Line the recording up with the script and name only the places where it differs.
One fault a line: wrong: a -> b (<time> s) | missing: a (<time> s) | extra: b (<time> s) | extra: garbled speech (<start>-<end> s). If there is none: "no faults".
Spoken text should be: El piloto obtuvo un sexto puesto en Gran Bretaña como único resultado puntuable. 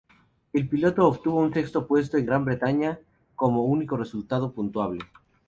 no faults